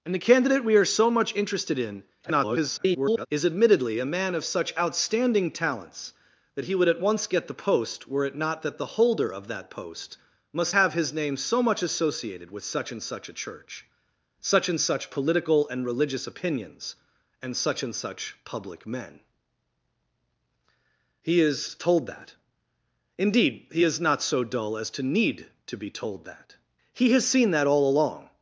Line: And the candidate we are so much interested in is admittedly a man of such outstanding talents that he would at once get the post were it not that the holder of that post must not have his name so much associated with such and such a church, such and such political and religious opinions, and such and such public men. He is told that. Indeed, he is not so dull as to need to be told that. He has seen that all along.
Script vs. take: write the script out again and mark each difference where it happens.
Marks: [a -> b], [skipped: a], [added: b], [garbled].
And the candidate we are so much interested in [garbled] is admittedly a man of such outstanding talents that he would at once get the post were it not that the holder of that post must [skipped: not] have his name so much associated with such and such a church, such and such political and religious opinions, and such and such public men. He is told that. Indeed, he is not so dull as to need to be told that. He has seen that all along.